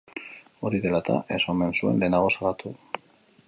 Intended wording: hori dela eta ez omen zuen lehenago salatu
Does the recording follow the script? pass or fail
pass